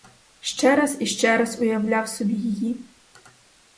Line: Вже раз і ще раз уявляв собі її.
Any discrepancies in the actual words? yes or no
yes